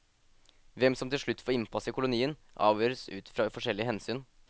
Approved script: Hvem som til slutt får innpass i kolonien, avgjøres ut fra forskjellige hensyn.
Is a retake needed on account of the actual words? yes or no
no